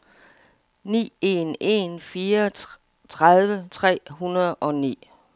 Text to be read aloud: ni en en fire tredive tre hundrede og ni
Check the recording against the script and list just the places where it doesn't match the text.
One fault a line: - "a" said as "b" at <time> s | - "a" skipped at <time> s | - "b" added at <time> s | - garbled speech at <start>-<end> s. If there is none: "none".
none